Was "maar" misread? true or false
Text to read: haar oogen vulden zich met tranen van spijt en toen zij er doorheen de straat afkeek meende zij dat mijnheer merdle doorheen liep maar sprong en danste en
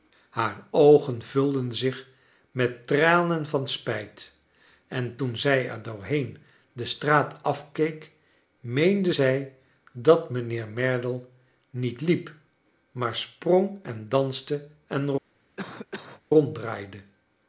false